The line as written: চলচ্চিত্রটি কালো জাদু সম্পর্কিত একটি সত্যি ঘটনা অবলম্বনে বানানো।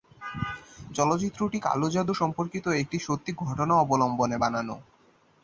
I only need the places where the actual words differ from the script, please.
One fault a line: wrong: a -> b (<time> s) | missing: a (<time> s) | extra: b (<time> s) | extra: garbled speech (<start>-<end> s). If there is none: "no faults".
no faults